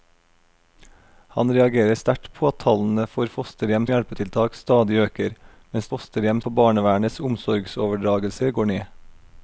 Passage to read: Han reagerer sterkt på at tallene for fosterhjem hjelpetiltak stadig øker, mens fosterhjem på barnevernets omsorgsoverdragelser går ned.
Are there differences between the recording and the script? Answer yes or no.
no